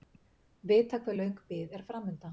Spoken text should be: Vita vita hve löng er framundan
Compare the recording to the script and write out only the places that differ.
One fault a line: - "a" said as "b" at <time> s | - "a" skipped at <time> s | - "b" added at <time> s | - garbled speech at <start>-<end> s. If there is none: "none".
- "vita" skipped at 1.0 s
- "bið" added at 1.5 s